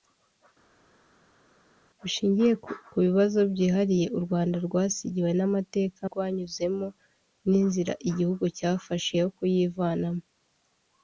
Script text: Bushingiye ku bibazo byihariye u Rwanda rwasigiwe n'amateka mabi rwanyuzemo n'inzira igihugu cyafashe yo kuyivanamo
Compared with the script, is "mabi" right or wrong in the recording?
wrong